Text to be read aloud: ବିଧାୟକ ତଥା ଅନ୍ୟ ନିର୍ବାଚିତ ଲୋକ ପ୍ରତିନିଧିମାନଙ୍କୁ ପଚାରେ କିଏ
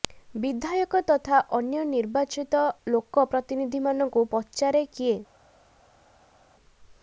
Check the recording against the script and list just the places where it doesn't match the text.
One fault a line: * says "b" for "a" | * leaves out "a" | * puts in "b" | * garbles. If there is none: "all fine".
all fine